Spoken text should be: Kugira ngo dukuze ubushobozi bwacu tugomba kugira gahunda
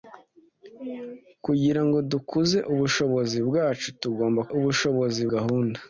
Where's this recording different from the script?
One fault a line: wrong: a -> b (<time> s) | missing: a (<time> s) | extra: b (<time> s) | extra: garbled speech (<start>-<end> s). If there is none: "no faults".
wrong: kugira -> ubushobozi (4.6 s)